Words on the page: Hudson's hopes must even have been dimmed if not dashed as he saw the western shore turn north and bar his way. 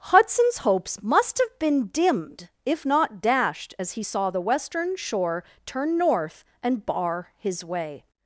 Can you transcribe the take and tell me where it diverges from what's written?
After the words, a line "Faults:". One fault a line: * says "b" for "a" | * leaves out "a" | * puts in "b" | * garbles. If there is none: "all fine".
Hudson's hopes must have been dimmed if not dashed as he saw the western shore turn north and bar his way.
Faults:
* leaves out "even"